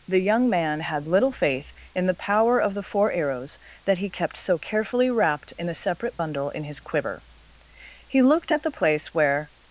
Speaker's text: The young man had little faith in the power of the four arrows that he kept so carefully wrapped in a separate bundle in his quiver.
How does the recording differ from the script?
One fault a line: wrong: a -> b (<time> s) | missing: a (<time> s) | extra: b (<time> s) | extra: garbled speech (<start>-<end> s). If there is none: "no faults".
extra: He looked at the place where (8.1 s)